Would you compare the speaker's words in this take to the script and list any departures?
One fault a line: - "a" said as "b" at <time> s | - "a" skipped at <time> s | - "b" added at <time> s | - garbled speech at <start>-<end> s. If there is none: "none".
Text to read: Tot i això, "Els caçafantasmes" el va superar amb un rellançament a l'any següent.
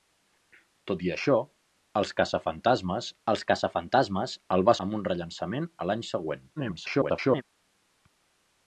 - "els caçafantasmes" added at 3.3 s
- "superar" skipped at 4.8 s
- garbled speech at 6.6-7.4 s